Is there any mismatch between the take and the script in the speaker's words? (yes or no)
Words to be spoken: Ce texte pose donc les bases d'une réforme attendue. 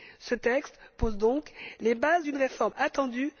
no